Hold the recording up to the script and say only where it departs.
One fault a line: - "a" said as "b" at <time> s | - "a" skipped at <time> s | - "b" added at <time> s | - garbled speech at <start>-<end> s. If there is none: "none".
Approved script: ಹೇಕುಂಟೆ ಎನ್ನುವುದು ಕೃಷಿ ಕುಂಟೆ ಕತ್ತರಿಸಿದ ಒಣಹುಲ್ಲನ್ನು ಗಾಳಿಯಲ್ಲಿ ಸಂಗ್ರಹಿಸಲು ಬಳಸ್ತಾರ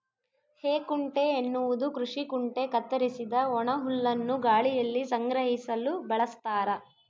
none